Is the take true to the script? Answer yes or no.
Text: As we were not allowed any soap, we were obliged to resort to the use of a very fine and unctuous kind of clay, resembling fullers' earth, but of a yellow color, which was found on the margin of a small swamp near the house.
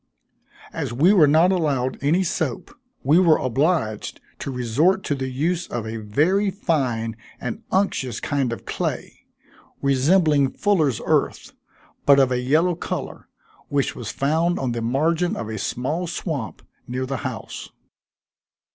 yes